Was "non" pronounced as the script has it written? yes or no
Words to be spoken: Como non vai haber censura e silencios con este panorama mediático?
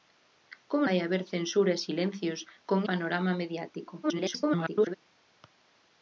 no